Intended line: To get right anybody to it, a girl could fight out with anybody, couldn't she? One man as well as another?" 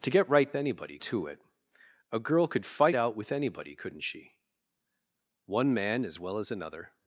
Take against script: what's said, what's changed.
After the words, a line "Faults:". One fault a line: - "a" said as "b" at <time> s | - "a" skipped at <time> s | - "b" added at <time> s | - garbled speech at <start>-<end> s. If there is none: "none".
To get right anybody to it, a girl could fight out with anybody, couldn't she? One man as well as another?"
Faults:
none